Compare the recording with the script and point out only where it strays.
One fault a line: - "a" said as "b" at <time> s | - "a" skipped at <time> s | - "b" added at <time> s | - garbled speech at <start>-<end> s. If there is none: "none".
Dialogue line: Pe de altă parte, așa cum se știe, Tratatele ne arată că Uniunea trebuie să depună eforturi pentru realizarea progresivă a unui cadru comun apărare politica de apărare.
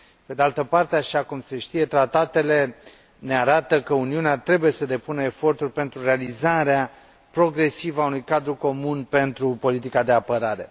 - "apărare" said as "pentru" at 9.0 s